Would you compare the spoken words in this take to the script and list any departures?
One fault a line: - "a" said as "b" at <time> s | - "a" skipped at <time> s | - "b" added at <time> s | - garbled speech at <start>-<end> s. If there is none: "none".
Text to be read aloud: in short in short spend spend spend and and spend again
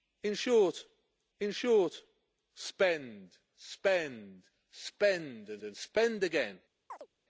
none